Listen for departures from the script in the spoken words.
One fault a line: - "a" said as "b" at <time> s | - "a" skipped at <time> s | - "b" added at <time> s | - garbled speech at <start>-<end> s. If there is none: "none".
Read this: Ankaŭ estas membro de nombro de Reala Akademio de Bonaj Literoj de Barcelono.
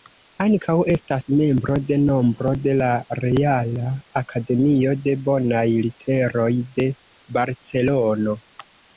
- "la" added at 2.8 s